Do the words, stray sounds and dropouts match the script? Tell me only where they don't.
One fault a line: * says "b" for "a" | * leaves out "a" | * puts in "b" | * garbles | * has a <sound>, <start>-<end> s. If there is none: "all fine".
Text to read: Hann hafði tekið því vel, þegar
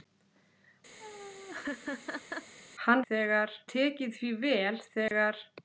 * has a laugh, 1.0-2.5 s
* says "þegar" for "hafði"
* has a dropout, 5.1-5.1 s